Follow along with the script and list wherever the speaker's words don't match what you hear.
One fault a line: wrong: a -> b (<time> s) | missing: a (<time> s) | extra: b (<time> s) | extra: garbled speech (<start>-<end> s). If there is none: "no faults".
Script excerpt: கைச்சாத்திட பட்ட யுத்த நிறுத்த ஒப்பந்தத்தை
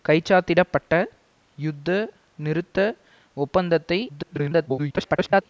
extra: garbled speech (4.1-5.4 s)